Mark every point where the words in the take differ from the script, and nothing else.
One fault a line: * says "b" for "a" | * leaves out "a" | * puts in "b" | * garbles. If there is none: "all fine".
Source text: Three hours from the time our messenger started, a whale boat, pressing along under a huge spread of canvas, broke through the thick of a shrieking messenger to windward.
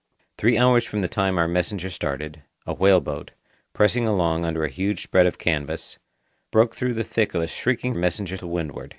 all fine